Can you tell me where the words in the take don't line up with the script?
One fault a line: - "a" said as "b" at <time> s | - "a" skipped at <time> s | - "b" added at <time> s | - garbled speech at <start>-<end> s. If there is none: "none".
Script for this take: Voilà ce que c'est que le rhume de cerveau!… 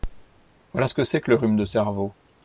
none